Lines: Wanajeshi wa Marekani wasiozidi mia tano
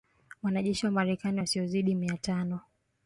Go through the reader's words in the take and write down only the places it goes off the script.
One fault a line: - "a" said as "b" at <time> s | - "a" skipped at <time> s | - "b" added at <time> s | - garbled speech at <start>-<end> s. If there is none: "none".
none